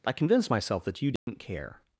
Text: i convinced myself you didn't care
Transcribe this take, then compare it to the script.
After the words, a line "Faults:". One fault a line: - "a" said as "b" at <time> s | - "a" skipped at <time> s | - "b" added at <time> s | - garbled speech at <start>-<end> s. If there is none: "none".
i convinced myself that you didn't care
Faults:
- "that" added at 0.9 s